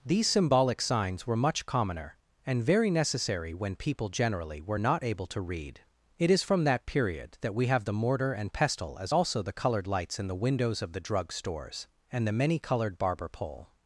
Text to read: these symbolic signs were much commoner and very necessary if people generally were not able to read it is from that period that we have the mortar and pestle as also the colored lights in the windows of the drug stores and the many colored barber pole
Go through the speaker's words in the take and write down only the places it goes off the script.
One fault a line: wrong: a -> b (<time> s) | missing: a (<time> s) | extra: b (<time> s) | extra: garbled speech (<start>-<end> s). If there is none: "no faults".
wrong: if -> when (3.5 s)